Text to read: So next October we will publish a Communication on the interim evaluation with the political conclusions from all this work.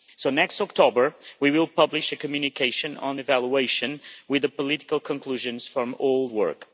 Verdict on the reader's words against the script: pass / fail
fail